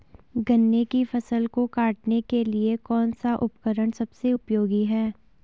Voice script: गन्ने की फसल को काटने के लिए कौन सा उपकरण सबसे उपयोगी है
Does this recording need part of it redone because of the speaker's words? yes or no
no